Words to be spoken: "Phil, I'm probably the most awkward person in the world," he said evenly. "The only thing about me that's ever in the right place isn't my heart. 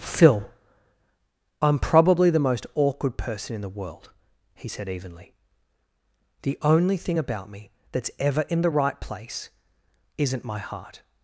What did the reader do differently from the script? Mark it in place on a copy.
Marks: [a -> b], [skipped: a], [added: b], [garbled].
"Phil, I'm probably the most awkward person in the world," he said evenly. "The only thing about me that's ever in the right place isn't my heart.